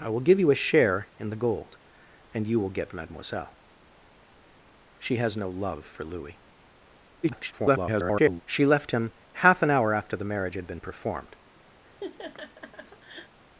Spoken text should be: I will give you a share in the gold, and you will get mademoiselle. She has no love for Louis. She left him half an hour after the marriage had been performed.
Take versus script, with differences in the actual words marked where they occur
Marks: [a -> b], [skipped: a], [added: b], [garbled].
I will give you a share in the gold, and you will get mademoiselle. She has no love for Louis. [garbled] She left him half an hour after the marriage had been performed.